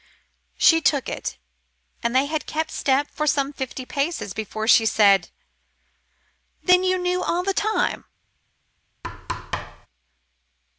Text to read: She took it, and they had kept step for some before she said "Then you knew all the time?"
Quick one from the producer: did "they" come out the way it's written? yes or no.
yes